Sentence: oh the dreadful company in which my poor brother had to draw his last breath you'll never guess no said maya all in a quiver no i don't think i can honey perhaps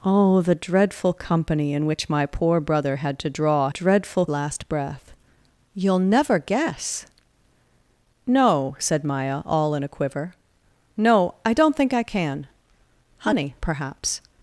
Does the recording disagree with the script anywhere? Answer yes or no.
yes